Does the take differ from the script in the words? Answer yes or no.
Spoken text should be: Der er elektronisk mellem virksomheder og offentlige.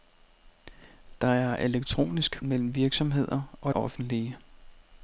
no